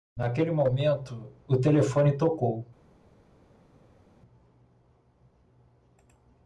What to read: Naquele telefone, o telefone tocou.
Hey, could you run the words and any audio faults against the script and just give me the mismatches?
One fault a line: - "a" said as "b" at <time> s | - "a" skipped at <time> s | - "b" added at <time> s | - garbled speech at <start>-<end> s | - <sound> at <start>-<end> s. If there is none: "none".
- "telefone" said as "momento" at 0.5 s